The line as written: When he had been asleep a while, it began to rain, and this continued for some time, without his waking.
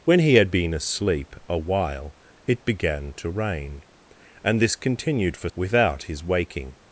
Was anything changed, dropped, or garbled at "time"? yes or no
yes